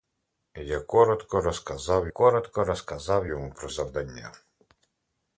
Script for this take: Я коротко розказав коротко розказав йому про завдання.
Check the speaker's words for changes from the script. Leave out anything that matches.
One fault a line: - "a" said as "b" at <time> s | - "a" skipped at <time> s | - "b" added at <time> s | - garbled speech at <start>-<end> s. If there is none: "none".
none